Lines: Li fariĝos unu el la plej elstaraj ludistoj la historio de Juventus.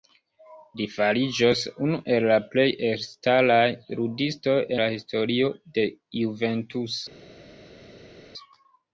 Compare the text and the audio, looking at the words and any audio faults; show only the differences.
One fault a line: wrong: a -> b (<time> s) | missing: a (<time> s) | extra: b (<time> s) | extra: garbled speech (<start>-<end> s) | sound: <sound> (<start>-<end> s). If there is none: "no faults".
no faults